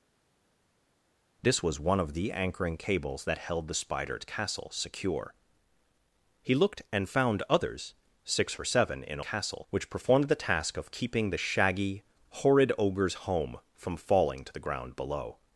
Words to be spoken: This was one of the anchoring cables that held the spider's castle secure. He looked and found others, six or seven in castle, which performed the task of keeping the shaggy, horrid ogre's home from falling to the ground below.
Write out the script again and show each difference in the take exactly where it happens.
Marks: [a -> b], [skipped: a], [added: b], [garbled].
This was one of the anchoring cables that held the spider's castle secure. He looked and found others, six or seven in castle, which performed the task of keeping the shaggy, horrid ogre's home from falling to the ground below.